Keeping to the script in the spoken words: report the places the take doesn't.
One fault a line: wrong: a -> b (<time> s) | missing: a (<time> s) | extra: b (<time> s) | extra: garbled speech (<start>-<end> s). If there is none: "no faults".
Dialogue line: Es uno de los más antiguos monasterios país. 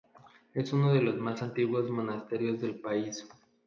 extra: del (2.6 s)